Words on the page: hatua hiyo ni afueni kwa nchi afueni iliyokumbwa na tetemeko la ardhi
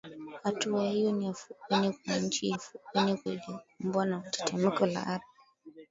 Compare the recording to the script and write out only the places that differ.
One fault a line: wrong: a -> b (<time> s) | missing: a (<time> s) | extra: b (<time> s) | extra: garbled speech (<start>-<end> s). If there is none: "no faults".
no faults